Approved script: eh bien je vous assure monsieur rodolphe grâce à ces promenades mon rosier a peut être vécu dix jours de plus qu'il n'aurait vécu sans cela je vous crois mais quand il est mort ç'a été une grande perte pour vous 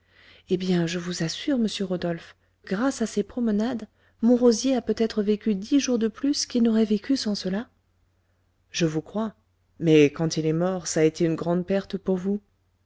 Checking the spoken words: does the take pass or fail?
pass